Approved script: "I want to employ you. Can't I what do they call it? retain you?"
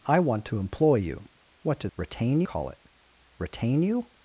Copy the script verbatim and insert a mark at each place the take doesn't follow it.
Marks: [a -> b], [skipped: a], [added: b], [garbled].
"I want to employ you. [skipped: Can't I] what do [they -> retain] call it? retain you?"